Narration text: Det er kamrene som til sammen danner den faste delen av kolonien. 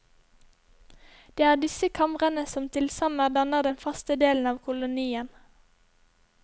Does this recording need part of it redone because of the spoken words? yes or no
yes